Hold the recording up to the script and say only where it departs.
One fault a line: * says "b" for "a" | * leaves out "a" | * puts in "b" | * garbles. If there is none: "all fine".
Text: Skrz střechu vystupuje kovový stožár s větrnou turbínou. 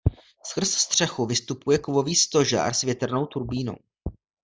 all fine